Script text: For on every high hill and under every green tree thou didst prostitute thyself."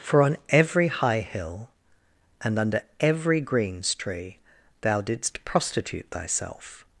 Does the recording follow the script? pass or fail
fail